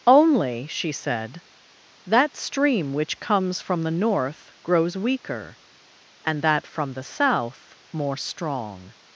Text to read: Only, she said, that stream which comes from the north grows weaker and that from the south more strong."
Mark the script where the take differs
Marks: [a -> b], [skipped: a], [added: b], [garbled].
Only, she said, that stream which comes from the north grows weaker and that from the south more strong."